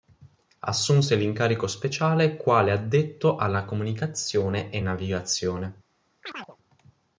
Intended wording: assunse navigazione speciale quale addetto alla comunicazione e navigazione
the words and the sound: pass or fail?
fail